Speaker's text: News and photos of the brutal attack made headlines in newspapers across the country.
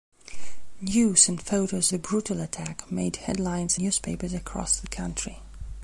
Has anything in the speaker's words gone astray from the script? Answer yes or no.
yes